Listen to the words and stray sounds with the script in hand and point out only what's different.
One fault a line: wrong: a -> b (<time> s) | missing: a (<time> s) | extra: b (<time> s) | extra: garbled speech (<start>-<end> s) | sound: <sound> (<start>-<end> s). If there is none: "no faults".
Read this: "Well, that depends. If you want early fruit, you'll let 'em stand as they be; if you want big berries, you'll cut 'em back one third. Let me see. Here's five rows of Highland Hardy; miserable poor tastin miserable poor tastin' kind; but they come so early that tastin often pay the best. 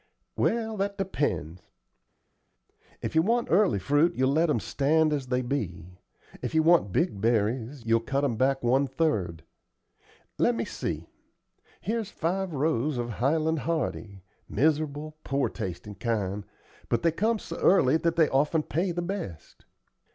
missing: miserable poor tastin (15.9 s)
wrong: tastin -> they (18.1 s)